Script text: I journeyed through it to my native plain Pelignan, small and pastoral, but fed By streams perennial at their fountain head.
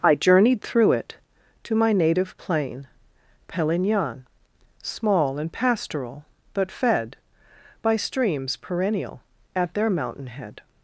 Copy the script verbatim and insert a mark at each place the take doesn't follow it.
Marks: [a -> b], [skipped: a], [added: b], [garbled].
I journeyed through it to my native plain Pelignan, small and pastoral, but fed By streams perennial at their [fountain -> mountain] head.